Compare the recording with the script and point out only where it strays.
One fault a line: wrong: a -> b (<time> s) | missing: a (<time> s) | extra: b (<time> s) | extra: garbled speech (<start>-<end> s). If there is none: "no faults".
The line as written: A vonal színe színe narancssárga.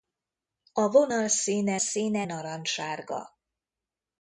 no faults